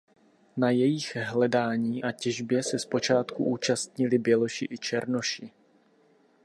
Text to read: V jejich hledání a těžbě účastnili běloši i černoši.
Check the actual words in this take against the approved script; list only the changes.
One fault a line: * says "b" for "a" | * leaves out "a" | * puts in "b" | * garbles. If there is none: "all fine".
* says "Na" for "V"
* puts in "se zpočátku"